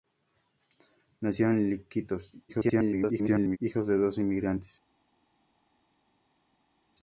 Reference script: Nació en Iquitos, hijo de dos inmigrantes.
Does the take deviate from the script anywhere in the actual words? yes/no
yes